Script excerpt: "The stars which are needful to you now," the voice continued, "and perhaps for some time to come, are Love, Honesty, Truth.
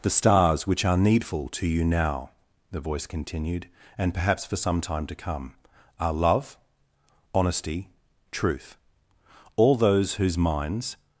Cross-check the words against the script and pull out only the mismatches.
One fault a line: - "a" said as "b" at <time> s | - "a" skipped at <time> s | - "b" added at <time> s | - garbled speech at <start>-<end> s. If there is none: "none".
- "All those whose minds" added at 9.6 s